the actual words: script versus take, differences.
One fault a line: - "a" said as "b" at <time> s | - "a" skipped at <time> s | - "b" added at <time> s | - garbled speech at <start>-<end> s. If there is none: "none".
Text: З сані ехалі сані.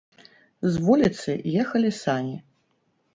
- "сані" said as "вуліцы" at 0.8 s